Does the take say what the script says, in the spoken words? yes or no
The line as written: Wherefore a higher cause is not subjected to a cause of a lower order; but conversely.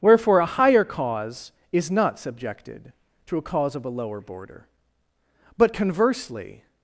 no